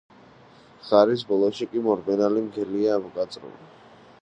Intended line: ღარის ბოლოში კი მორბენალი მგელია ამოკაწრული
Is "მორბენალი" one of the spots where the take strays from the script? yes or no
no